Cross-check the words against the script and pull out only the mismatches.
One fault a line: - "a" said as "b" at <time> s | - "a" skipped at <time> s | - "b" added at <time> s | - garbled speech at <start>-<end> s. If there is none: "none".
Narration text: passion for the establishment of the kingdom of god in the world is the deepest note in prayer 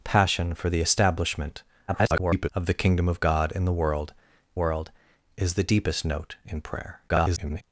- garbled speech at 1.9-2.5 s
- "world" added at 4.5 s
- garbled speech at 7.1-7.6 s